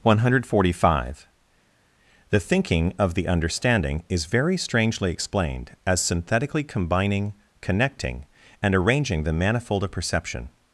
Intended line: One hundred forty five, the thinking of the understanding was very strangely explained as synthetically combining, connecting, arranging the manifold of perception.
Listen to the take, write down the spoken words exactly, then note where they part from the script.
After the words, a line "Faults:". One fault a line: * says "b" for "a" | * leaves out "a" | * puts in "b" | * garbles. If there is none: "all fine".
One hundred forty five, the thinking of the understanding is very strangely explained as synthetically combining, connecting, and arranging the manifold of perception.
Faults:
* says "is" for "was"
* puts in "and"